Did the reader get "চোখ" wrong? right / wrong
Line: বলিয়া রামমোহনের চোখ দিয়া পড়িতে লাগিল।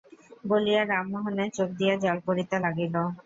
right